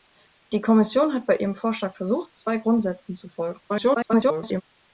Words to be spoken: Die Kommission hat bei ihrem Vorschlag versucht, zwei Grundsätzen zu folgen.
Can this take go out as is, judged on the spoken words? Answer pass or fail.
fail